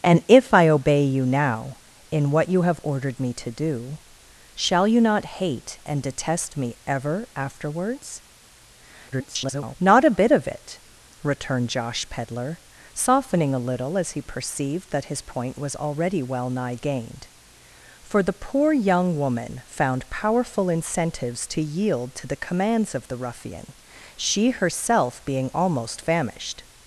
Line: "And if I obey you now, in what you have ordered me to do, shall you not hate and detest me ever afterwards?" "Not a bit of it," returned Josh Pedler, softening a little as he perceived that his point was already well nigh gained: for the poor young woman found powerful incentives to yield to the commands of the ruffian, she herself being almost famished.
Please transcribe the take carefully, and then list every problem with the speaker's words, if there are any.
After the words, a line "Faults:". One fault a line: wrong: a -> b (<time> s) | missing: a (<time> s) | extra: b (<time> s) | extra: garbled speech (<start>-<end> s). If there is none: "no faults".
"And if I obey you now, in what you have ordered me to do, shall you not hate and detest me ever afterwards?" [garbled] "Not a bit of it," returned Josh Pedler, softening a little as he perceived that his point was already well nigh gained: for the poor young woman found powerful incentives to yield to the commands of the ruffian, she herself being almost famished.
Faults:
extra: garbled speech (9.1-9.8 s)